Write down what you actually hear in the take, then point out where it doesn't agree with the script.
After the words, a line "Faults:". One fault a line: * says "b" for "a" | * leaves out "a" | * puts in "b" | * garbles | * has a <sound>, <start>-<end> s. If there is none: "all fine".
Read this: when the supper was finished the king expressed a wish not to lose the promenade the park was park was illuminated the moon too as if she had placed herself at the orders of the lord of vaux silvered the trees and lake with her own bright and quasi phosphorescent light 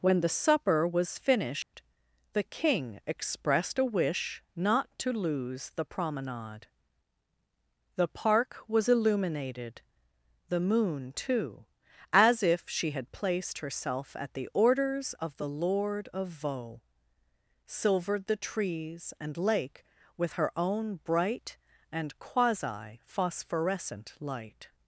when the supper was finished the king expressed a wish not to lose the promenade the park was illuminated the moon too as if she had placed herself at the orders of the lord of vaux silvered the trees and lake with her own bright and quasi phosphorescent light
Faults:
* has a dropout, 1.6-1.7 s
* leaves out "park was"